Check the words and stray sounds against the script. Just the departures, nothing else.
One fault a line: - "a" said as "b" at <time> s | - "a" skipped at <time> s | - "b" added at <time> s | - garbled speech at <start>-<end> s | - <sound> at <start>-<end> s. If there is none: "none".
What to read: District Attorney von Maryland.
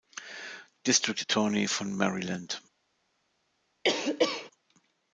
- cough at 3.8-4.5 s